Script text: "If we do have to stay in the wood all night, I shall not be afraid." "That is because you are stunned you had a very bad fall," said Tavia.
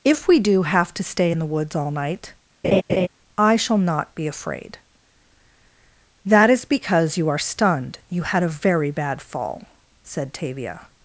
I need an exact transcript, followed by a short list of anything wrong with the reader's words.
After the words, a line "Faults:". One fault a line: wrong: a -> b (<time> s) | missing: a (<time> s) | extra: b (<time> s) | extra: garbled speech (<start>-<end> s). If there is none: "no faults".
"If we do have to stay in the woods all night, I shall not be afraid." "That is because you are stunned you had a very bad fall," said Tavia.
Faults:
wrong: wood -> woods (1.5 s)